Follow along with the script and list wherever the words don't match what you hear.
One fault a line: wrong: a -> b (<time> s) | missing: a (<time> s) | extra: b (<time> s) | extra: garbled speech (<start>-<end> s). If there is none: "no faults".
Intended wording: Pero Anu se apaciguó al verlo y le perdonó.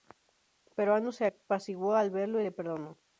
no faults